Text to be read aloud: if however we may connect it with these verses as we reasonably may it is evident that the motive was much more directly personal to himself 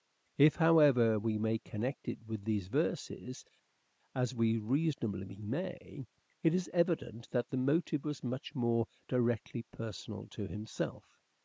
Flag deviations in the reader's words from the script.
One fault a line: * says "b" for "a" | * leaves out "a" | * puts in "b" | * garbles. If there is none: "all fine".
all fine